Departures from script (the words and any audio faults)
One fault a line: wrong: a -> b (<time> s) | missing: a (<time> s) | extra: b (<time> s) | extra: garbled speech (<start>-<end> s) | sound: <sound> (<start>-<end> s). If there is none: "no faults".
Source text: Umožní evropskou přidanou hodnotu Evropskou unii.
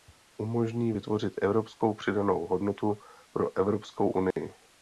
extra: vytvořit (0.9 s)
extra: pro (3.3 s)
sound: dropout (4.3-4.4 s)